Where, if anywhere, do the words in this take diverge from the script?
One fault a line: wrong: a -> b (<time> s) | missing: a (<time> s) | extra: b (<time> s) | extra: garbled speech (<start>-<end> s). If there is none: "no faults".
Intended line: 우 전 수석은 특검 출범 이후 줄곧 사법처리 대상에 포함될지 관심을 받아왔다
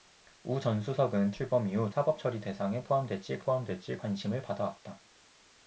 missing: 특검 (1.3 s)
missing: 줄곧 (1.9 s)
extra: 포함될지 (3.4 s)